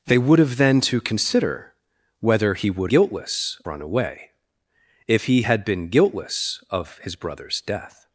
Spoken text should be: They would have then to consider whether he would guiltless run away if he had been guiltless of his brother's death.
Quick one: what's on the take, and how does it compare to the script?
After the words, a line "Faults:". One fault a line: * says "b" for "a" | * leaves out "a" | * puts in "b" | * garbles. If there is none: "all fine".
They would have then to consider whether he would guiltless run away if he had been guiltless of his brother's death.
Faults:
all fine